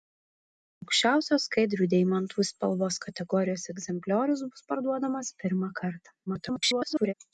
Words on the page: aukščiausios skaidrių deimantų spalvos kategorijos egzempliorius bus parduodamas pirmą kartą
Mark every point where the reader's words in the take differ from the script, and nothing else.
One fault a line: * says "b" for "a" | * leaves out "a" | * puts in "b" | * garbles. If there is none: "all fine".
* garbles